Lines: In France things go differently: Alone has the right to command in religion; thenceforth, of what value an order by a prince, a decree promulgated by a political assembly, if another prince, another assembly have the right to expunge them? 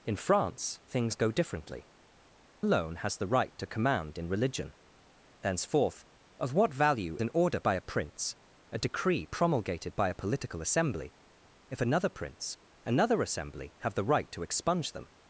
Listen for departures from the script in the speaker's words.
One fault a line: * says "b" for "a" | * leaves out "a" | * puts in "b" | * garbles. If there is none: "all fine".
all fine